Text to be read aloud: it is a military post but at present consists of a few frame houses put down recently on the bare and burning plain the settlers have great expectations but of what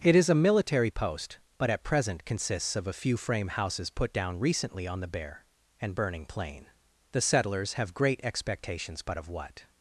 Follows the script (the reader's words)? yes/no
yes